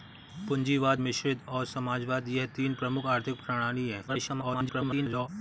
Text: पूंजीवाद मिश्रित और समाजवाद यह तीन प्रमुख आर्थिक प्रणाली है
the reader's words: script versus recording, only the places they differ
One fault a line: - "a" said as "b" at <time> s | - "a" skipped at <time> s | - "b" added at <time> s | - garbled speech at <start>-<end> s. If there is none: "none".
- garbled speech at 4.1-5.3 s